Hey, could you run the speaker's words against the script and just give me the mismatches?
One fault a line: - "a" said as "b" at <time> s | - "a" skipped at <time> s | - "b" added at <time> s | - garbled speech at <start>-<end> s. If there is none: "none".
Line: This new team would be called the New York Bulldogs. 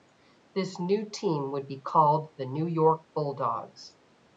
none